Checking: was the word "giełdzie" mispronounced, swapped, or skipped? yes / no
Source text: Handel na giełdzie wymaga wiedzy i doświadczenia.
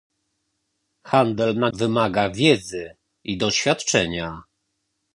yes